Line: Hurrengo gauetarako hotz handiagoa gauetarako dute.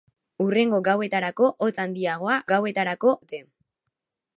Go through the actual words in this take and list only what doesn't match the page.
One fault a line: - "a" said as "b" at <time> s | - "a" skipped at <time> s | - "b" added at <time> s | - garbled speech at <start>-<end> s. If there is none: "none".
none